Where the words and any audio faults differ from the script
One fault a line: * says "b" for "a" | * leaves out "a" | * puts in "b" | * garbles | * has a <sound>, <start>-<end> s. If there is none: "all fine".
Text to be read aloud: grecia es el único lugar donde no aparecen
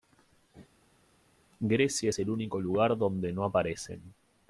all fine